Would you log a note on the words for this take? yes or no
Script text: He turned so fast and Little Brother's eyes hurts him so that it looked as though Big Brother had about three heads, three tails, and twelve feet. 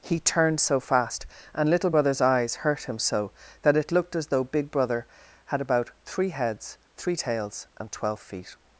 yes